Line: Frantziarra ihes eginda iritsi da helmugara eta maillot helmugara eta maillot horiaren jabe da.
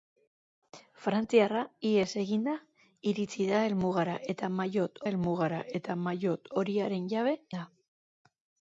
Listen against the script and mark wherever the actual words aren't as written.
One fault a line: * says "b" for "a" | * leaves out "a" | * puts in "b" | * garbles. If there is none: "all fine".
all fine